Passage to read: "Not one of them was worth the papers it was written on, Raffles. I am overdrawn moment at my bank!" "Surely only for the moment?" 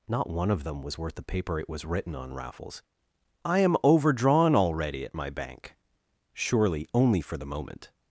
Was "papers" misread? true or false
true